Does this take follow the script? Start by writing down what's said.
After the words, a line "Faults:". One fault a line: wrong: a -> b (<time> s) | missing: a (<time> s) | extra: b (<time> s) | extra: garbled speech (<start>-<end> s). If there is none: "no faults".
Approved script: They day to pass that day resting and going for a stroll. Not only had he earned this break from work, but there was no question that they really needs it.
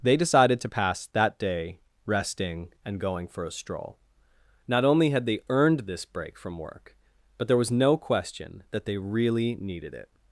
They decided to pass that day resting and going for a stroll. Not only had they earned this break from work, but there was no question that they really needed it.
Faults:
wrong: day -> decided (0.2 s)
wrong: he -> they (5.3 s)
wrong: needs -> needed (9.6 s)